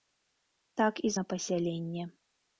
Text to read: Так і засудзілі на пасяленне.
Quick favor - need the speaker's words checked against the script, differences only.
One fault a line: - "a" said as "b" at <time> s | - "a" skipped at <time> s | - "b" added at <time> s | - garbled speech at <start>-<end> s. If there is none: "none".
- "засудзілі" skipped at 1.1 s